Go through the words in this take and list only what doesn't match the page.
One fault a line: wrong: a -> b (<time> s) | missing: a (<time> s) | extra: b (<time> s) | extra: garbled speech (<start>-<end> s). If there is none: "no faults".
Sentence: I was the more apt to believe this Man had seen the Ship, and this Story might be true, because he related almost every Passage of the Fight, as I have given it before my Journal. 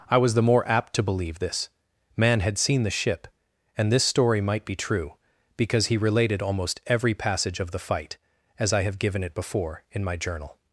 extra: in (9.9 s)